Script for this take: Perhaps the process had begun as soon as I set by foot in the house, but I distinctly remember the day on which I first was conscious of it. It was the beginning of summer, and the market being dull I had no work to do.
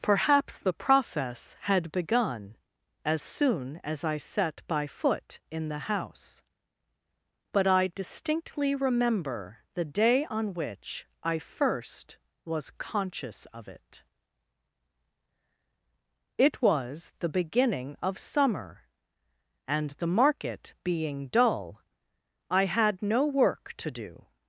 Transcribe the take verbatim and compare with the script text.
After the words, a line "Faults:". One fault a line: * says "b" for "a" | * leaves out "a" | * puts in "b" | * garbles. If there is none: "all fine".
Perhaps the process had begun as soon as I set by foot in the house, but I distinctly remember the day on which I first was conscious of it. It was the beginning of summer, and the market being dull I had no work to do.
Faults:
all fine